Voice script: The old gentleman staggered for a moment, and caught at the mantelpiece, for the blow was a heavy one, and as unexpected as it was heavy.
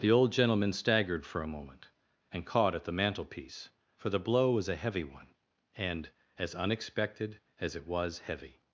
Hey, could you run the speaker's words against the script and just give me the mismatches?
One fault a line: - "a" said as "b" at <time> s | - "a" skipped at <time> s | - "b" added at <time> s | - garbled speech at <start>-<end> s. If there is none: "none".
none